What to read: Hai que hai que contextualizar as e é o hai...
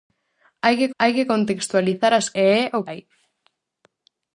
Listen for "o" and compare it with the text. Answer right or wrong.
right